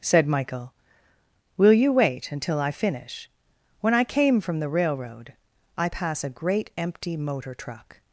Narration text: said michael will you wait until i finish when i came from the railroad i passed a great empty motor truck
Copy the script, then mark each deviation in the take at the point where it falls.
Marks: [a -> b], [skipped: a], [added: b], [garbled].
said michael will you wait until i finish when i came from the railroad i [passed -> pass] a great empty motor truck